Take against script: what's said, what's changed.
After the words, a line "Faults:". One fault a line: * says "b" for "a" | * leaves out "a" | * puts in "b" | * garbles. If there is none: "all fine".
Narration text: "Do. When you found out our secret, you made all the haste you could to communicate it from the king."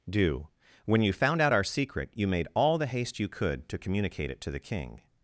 "Do. When you found out our secret, you made all the haste you could to communicate it to the king."
Faults:
* says "to" for "from"